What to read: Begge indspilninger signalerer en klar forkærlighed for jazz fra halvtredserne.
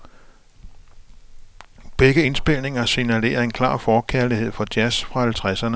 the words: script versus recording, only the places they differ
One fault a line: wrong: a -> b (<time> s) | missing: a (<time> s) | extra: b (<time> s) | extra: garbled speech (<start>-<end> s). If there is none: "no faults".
no faults